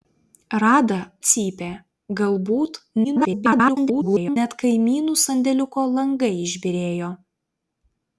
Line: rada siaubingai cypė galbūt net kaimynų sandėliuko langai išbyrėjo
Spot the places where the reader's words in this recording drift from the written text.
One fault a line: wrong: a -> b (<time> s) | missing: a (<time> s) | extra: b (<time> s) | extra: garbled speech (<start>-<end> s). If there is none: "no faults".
missing: siaubingai (0.9 s)
extra: garbled speech (3.0-4.4 s)